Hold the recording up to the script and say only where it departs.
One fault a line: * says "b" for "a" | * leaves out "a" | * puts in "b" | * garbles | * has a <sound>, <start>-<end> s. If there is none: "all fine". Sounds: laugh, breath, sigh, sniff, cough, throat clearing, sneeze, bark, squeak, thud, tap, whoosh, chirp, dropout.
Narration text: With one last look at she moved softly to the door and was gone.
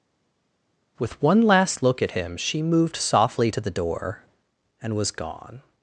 * puts in "him"